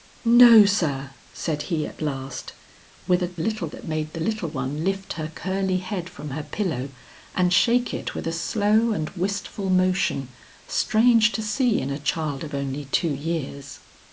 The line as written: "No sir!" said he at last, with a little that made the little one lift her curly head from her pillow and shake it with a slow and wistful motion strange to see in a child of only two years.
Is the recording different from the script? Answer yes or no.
no